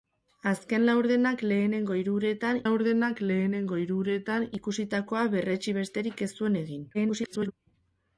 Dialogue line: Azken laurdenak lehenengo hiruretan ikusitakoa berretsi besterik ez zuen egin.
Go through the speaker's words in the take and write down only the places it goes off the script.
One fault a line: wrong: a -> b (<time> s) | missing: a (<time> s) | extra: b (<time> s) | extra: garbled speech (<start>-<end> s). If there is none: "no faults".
extra: laurdenak lehenengo hiruretan (2.6 s)
extra: garbled speech (6.9-7.5 s)